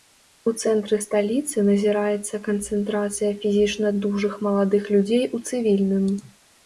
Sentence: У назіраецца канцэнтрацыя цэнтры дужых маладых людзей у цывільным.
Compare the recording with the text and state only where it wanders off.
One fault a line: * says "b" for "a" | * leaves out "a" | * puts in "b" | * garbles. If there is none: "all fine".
* puts in "цэнтры сталіцы"
* says "фізічна" for "цэнтры"